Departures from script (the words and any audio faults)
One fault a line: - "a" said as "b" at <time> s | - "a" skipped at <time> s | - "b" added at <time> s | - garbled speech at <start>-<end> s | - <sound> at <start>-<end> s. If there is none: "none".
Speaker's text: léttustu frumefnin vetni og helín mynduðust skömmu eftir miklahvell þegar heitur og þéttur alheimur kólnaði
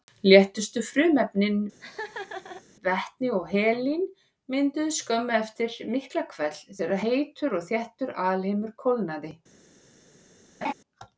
- laugh at 1.8-2.6 s
- laugh at 10.6-10.7 s